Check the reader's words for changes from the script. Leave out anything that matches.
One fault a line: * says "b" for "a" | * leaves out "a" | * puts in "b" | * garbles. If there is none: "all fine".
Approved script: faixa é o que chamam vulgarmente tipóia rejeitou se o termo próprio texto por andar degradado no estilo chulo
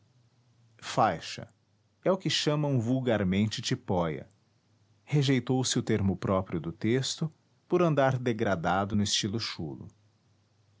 * puts in "do"